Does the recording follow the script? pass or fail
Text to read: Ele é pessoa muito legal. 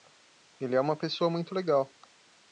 fail